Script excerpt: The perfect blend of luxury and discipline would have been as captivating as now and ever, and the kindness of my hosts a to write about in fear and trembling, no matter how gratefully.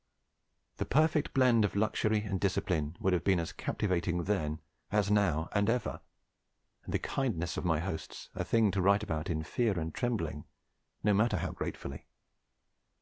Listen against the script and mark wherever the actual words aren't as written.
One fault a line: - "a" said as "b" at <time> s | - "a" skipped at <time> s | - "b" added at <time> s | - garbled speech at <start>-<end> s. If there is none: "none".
- "then" added at 4.2 s
- "thing" added at 8.4 s